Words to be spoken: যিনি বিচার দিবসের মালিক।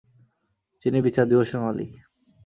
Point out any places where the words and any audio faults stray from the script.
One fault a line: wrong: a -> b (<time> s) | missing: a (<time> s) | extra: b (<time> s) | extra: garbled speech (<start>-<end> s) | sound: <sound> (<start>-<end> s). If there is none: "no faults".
no faults